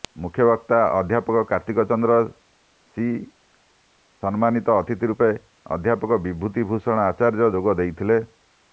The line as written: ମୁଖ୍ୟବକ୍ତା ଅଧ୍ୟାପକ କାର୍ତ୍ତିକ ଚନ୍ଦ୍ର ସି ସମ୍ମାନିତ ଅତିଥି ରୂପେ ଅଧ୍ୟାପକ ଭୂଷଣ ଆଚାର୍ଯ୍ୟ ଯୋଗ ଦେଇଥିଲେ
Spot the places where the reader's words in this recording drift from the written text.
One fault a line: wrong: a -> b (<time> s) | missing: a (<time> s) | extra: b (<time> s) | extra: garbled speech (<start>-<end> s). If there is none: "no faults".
extra: ବିଭୂତି (6.2 s)